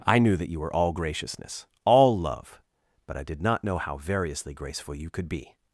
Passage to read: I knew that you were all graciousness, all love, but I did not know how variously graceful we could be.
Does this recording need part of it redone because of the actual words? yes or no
yes